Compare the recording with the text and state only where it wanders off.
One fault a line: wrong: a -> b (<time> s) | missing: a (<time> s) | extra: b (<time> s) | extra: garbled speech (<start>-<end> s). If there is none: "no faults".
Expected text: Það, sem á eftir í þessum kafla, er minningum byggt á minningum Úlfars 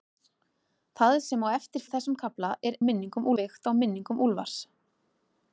no faults